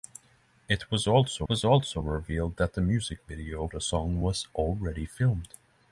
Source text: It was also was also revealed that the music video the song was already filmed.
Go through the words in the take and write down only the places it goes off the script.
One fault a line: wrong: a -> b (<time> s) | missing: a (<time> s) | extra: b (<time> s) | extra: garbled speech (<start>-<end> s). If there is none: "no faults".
no faults